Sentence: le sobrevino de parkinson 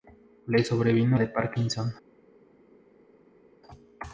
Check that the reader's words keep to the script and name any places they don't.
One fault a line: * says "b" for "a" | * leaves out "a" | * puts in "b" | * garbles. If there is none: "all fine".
all fine